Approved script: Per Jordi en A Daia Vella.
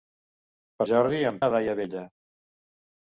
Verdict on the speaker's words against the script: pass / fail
pass